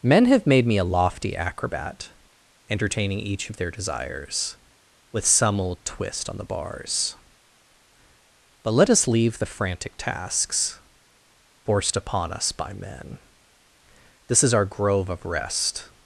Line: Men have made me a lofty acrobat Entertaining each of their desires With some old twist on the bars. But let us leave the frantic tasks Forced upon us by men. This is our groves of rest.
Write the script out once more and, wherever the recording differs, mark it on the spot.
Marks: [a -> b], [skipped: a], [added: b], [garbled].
Men have made me a lofty acrobat Entertaining each of their desires With some old twist on the bars. But let us leave the frantic tasks Forced upon us by men. This is our [groves -> grove] of rest.